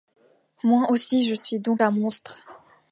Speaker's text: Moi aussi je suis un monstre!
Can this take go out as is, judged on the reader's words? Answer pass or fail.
fail